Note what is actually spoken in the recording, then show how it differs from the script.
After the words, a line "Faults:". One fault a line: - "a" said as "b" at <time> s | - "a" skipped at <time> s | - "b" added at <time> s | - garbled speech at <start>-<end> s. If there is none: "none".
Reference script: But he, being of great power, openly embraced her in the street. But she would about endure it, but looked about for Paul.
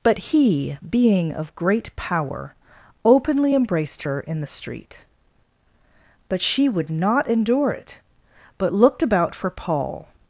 But he, being of great power, openly embraced her in the street. But she would not endure it, but looked about for Paul.
Faults:
- "about" said as "not" at 6.9 s